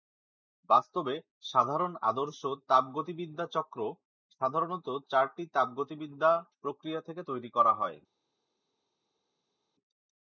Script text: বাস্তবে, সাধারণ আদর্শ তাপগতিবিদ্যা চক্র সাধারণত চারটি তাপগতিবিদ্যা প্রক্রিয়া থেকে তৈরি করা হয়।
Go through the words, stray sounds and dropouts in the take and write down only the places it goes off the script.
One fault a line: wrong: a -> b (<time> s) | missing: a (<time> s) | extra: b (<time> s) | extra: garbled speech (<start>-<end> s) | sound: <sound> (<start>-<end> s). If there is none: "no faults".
no faults